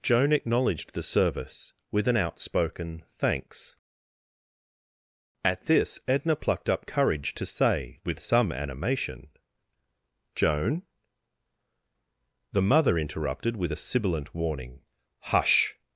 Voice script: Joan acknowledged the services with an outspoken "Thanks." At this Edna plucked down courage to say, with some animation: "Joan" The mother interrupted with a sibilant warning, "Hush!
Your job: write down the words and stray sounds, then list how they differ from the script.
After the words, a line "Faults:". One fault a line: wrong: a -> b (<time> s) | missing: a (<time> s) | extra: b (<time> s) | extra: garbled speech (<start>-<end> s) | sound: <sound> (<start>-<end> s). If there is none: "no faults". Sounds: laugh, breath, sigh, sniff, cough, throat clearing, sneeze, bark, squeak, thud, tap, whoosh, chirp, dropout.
Joan acknowledged the service with an outspoken "Thanks." At this Edna plucked up courage to say, with some animation: "Joan" The mother interrupted with a sibilant warning, "Hush!
Faults:
wrong: services -> service (1.0 s)
wrong: down -> up (6.7 s)